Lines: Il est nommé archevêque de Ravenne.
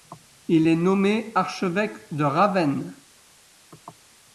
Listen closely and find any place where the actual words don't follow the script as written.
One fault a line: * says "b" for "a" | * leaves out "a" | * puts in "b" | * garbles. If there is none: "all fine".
all fine